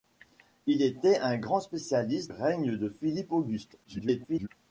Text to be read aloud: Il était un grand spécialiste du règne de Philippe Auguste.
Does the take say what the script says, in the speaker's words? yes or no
no